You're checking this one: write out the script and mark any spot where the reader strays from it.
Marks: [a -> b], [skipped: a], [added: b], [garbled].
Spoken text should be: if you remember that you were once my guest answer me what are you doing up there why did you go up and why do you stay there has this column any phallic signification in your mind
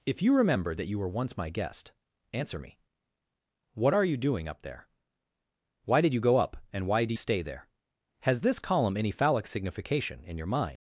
if you remember that you were once my guest answer me what are you doing up there why did you go up and why do [skipped: you] stay there has this column any phallic signification in your mind